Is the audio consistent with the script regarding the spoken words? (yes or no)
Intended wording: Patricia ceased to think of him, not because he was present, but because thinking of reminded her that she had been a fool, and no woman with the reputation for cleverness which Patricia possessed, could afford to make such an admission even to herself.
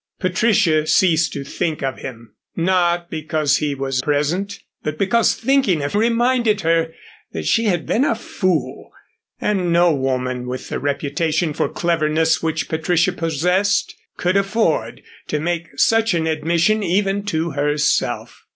yes